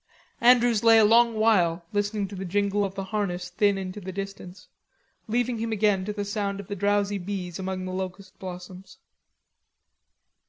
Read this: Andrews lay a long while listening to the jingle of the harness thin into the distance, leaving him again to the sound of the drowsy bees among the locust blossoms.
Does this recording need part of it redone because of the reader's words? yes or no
no